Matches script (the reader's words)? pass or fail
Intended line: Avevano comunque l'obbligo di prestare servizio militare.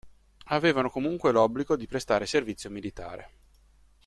pass